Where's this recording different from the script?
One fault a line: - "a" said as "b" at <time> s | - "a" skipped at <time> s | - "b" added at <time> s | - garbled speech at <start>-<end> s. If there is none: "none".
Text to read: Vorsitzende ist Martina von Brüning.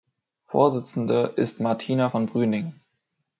none